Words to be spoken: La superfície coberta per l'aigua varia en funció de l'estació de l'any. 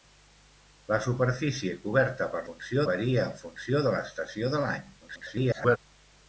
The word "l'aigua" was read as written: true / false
false